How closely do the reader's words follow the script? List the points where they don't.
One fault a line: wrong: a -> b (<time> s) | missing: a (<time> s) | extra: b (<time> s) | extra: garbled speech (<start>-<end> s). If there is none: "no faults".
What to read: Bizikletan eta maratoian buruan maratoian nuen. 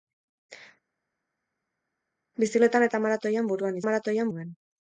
no faults